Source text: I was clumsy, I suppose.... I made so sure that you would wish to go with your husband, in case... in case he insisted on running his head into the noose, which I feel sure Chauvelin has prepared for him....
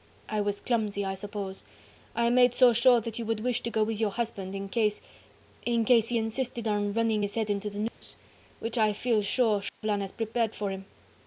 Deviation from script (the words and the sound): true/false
true